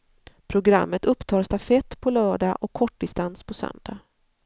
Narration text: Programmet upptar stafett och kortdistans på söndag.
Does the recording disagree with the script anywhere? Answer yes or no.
yes